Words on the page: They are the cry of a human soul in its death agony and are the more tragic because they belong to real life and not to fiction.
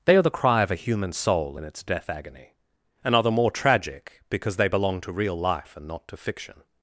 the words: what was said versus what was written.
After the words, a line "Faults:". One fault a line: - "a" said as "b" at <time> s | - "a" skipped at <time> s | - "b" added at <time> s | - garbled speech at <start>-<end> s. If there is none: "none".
They are the cry of a human soul in its death agony and are the more tragic because they belong to real life and not to fiction.
Faults:
none